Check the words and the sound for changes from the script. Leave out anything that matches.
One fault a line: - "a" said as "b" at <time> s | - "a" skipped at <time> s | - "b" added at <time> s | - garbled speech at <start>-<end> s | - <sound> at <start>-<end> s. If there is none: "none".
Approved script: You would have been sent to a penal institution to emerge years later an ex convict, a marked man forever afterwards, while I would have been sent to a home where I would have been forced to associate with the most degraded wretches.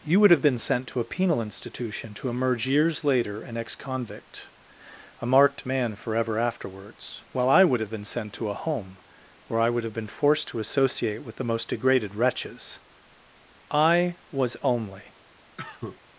- "I was only" added at 13.7 s
- cough at 15.6-16.0 s